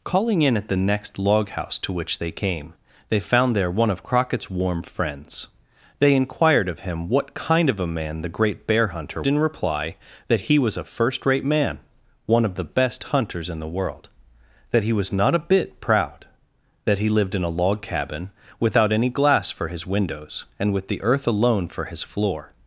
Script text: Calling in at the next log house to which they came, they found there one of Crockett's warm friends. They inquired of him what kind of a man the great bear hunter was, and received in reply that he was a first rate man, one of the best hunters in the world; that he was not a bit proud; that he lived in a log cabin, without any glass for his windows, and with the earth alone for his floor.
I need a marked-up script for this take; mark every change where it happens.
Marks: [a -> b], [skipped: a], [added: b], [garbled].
Calling in at the next log house to which they came, they found there one of Crockett's warm friends. They inquired of him what kind of a man the great bear hunter [skipped: was, and received] in reply that he was a first rate man, one of the best hunters in the world; that he was not a bit proud; that he lived in a log cabin, without any glass for his windows, and with the earth alone for his floor.